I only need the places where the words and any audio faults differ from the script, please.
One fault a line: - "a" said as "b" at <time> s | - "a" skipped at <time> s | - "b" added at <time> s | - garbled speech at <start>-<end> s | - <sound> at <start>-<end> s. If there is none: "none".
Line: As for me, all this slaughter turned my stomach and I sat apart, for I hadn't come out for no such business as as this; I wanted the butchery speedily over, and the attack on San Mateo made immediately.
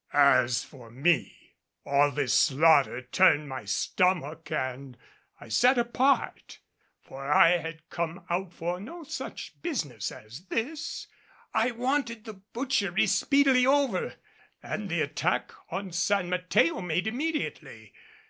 - "hadn't" said as "had" at 7.6 s
- "as" skipped at 10.5 s